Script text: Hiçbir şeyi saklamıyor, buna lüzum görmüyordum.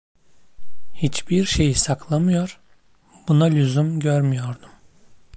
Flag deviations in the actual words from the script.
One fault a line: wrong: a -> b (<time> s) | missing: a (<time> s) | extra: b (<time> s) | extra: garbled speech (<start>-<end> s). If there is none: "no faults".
no faults